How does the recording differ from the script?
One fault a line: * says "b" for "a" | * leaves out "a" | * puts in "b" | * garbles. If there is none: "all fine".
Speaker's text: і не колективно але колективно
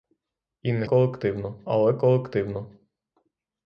all fine